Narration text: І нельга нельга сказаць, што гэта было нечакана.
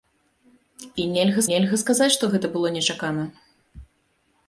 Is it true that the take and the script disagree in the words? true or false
false